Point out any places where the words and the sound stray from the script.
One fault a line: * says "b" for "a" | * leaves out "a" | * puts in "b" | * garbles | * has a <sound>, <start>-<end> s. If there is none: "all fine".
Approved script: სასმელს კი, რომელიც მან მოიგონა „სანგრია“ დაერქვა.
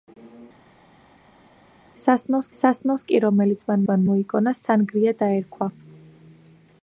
* puts in "სასმელს"
* puts in "მან"